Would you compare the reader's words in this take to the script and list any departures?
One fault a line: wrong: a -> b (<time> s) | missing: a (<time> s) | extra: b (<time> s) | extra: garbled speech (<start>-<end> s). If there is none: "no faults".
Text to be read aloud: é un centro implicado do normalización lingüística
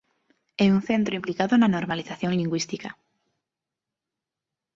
wrong: do -> na (1.6 s)